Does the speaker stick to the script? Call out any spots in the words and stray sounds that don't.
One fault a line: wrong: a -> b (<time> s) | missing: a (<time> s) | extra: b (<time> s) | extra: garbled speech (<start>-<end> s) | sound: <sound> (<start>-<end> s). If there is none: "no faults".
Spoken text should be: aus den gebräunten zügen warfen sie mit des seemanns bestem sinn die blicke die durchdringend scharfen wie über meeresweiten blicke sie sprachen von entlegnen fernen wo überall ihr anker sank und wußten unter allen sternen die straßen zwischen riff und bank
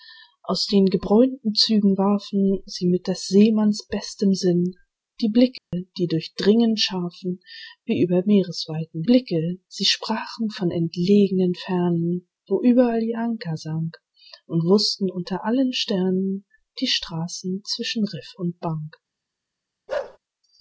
sound: dropout (5.6-5.7 s)
sound: bark (19.9-20.2 s)